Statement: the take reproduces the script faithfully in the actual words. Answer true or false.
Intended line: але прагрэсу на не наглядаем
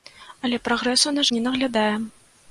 true